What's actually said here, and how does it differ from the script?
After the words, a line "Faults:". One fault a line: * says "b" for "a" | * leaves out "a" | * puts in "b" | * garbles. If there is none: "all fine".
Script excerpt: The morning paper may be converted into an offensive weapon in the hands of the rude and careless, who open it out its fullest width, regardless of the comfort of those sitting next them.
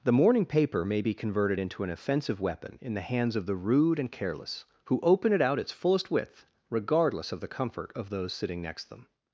The morning paper may be converted into an offensive weapon in the hands of the rude and careless, who open it out its fullest width, regardless of the comfort of those sitting next them.
Faults:
all fine